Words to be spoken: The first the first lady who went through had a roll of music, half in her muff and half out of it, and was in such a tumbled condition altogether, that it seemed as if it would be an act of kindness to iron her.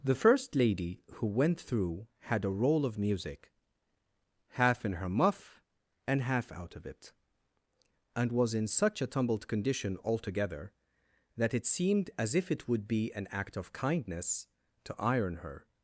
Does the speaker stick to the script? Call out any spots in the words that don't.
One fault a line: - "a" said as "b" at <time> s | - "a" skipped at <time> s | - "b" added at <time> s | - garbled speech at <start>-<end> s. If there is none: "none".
- "the first" skipped at 0.6 s